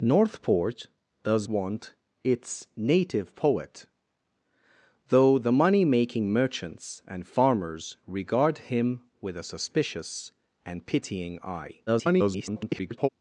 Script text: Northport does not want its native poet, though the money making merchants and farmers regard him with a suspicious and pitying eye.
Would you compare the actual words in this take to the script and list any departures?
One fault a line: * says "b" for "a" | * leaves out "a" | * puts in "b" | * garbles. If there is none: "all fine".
* leaves out "not"
* garbles